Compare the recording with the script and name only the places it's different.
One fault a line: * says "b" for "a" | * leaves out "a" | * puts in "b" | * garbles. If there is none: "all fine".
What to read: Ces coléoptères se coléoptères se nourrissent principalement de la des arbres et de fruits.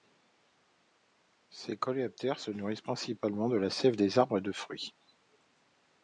* leaves out "coléoptères se"
* puts in "sève"